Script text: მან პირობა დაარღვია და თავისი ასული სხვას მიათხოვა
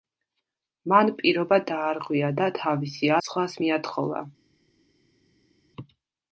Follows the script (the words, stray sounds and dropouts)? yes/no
no